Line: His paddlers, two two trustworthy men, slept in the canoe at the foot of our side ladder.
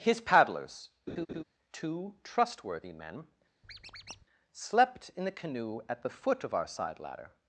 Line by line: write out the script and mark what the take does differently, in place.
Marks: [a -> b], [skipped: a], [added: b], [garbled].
His paddlers, two [skipped: two] trustworthy men, slept in the canoe at the foot of our side ladder.